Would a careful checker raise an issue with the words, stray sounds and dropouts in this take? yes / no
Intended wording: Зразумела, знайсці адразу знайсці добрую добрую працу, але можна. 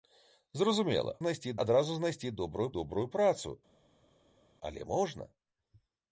no